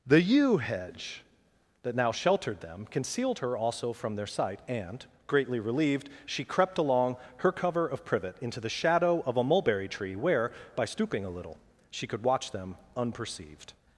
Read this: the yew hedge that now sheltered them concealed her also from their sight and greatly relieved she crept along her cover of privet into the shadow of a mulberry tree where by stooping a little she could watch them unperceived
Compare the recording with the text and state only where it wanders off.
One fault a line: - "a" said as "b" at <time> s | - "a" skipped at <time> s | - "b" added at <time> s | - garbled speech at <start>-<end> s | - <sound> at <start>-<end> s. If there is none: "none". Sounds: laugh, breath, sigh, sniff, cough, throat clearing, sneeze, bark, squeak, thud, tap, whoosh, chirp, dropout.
none